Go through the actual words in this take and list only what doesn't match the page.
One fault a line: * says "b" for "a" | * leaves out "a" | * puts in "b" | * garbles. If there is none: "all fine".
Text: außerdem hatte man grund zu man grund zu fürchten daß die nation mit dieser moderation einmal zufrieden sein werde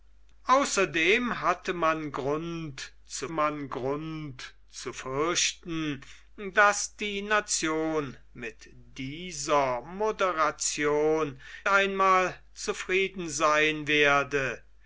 all fine